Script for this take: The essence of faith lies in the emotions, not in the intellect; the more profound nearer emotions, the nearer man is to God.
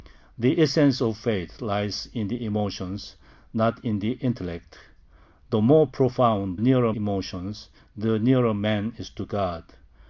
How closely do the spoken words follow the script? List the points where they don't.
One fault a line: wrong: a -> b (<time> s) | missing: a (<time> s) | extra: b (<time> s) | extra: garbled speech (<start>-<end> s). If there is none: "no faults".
no faults